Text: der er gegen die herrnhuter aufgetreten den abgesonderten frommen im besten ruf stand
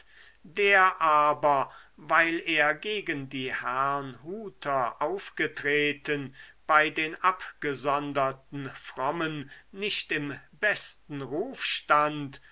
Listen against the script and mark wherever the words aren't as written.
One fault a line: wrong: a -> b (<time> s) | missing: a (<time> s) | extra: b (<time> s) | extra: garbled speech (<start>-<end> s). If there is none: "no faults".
extra: aber weil (1.0 s)
extra: bei (6.7 s)
extra: nicht (9.7 s)